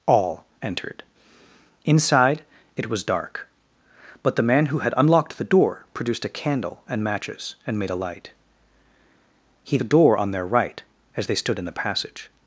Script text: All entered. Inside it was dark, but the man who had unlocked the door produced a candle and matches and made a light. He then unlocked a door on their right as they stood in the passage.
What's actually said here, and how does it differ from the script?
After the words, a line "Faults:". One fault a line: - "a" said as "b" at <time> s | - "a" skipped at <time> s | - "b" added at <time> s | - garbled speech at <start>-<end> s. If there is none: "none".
All entered. Inside it was dark, but the man who had unlocked the door produced a candle and matches and made a light. He a door on their right as they stood in the passage.
Faults:
- "then unlocked" skipped at 9.8 s